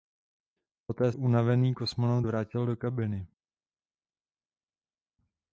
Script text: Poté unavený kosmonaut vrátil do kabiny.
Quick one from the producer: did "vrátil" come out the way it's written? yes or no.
yes